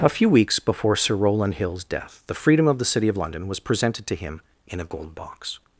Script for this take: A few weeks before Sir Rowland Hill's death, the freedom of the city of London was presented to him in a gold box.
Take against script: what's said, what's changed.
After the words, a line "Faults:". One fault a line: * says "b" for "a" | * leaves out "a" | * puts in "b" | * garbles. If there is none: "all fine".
A few weeks before Sir Rowland Hill's death, the freedom of the city of London was presented to him in a gold box.
Faults:
all fine